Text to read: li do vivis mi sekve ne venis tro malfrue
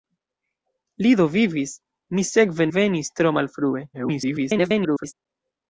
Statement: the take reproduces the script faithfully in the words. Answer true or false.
false